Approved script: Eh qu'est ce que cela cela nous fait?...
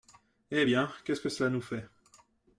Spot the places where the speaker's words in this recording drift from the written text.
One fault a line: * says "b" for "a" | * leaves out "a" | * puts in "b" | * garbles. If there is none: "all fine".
* puts in "bien"
* leaves out "cela"